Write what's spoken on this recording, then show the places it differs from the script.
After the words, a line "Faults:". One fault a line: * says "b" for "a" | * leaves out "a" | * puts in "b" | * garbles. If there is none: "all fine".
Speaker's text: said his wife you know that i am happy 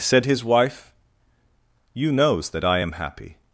said his wife you knows that i am happy
Faults:
* says "knows" for "know"